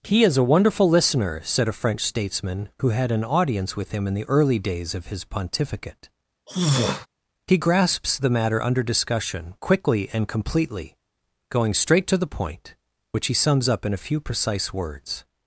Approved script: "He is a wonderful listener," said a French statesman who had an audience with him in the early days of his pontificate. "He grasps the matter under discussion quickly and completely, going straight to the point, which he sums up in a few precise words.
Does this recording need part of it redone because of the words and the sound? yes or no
yes